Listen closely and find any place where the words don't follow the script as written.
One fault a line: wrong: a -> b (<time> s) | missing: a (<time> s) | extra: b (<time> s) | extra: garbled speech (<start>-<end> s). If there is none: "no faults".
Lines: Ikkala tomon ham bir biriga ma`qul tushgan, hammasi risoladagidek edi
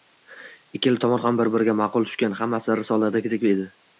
no faults